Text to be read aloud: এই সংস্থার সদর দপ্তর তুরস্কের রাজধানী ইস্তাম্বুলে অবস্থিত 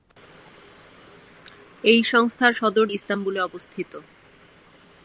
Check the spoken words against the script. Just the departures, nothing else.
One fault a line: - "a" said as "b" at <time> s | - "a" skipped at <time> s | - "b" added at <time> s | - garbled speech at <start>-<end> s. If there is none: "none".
- "দপ্তর তুরস্কের রাজধানী" skipped at 2.9 s